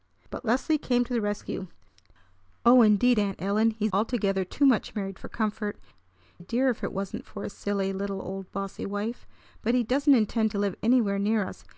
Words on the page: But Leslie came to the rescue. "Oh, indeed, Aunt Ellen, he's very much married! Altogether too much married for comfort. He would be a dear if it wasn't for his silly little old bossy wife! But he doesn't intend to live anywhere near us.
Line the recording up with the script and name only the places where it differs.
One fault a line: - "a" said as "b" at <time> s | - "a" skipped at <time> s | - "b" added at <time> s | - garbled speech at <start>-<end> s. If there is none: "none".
- "very much married" skipped at 3.9 s
- "He would be" skipped at 5.8 s